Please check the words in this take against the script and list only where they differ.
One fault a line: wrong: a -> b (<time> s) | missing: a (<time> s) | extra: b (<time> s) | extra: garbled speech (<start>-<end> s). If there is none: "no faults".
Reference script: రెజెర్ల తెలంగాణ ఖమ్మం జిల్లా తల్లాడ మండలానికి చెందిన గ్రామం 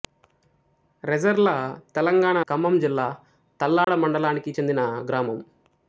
no faults